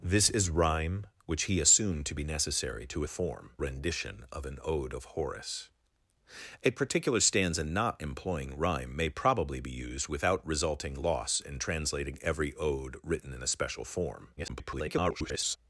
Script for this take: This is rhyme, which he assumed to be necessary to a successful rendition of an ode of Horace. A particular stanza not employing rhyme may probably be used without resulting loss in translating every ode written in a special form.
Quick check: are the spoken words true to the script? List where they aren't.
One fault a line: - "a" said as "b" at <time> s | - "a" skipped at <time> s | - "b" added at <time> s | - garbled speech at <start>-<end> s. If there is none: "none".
- "successful" said as "form" at 3.1 s
- garbled speech at 14.4-15.6 s